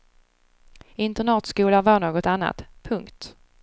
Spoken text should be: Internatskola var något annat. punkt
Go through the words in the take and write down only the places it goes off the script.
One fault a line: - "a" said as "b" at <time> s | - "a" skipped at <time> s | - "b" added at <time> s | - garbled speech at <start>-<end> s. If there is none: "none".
none